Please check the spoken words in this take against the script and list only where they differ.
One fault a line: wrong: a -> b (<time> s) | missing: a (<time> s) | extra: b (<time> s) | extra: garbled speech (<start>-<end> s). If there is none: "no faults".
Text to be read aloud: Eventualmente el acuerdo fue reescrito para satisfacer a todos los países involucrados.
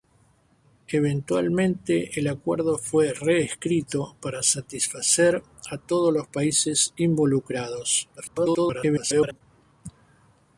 extra: garbled speech (8.2-9.4 s)